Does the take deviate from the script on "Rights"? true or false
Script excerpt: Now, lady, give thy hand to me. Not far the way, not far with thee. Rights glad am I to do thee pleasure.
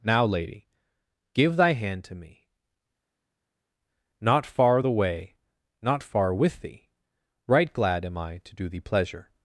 true